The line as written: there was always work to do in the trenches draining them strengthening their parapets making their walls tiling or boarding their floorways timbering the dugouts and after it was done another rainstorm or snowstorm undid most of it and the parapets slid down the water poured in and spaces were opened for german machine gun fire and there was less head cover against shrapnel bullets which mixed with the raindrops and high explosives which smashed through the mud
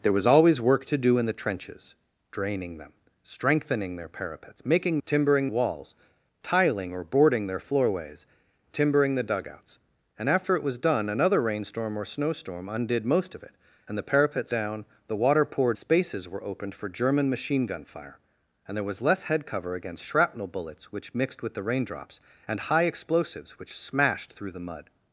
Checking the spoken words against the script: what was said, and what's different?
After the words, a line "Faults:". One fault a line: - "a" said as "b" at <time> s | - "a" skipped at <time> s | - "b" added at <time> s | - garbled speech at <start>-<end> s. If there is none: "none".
there was always work to do in the trenches draining them strengthening their parapets making timbering walls tiling or boarding their floorways timbering the dugouts and after it was done another rainstorm or snowstorm undid most of it and the parapets down the water poured spaces were opened for german machine gun fire and there was less head cover against shrapnel bullets which mixed with the raindrops and high explosives which smashed through the mud
Faults:
- "their" said as "timbering" at 5.0 s
- "slid" skipped at 14.5 s
- "in and" skipped at 15.8 s